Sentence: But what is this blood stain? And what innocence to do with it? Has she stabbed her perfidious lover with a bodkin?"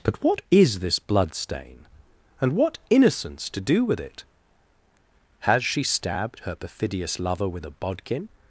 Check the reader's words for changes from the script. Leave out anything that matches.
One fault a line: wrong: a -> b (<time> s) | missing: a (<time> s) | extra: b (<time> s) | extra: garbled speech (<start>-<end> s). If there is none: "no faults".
no faults